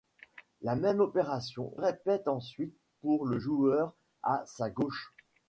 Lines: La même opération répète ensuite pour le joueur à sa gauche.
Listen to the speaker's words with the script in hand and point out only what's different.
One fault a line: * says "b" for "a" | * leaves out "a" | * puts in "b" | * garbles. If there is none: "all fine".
all fine